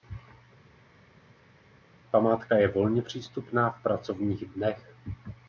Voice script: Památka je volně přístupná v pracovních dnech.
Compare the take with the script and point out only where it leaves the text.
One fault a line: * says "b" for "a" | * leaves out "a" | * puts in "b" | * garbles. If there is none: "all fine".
all fine